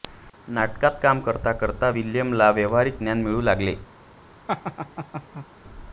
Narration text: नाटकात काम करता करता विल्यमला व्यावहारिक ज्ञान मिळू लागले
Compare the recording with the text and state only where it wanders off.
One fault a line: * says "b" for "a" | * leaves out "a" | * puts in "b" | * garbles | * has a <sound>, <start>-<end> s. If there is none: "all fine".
* has a laugh, 4.5-5.5 s